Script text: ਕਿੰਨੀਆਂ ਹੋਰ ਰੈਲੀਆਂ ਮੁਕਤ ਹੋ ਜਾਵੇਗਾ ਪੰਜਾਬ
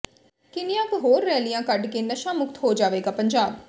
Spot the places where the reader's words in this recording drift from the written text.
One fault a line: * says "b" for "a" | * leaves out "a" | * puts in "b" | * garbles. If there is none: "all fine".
* puts in "ਕੁ"
* puts in "ਕੱਢ ਕੇ ਨਸ਼ਾ"